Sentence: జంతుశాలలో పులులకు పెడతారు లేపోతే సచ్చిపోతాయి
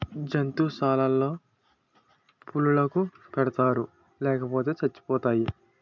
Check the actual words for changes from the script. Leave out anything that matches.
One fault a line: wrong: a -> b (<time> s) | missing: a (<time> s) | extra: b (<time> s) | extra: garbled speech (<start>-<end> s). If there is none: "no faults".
no faults